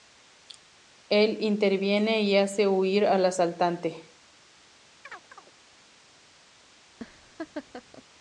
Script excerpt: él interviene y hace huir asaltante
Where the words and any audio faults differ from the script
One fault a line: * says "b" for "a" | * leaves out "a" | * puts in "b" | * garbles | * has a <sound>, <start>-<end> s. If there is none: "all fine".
* puts in "al"
* has a chirp, 5.0-5.5 s
* has a laugh, 6.9-8.0 s